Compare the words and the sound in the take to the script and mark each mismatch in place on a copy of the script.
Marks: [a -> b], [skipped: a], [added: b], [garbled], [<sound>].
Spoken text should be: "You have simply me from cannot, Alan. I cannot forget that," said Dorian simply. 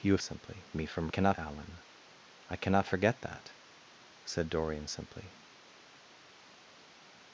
"You have simply me from cannot, Alan. I cannot forget that," said Dorian simply.